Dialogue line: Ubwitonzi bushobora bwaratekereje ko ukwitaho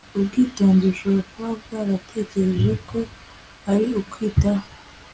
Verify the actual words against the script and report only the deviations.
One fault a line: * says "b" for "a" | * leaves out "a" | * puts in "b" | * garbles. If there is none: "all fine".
* puts in "kuba"
* puts in "ari"